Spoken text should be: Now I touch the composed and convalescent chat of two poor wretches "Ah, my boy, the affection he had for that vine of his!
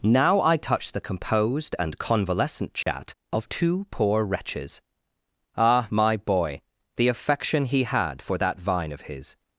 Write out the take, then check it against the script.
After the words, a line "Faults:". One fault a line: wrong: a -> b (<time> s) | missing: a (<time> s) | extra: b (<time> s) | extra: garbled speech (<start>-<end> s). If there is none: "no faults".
Now I touch the composed and convalescent chat of two poor wretches "Ah, my boy, the affection he had for that vine of his!
Faults:
no faults